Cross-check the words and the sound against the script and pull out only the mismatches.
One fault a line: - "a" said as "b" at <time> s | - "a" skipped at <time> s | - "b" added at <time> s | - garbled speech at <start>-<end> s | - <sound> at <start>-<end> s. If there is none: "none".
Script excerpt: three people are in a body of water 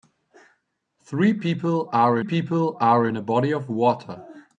- "people are" added at 2.2 s